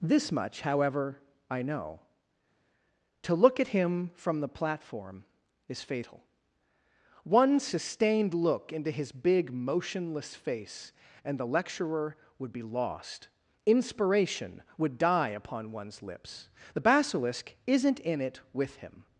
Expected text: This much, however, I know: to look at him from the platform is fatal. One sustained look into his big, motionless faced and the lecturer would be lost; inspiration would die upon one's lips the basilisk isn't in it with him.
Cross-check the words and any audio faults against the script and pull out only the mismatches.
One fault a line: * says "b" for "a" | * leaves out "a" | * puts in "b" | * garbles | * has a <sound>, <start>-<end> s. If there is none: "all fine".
* says "face" for "faced"